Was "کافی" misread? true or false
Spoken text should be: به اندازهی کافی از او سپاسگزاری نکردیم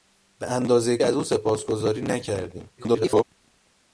true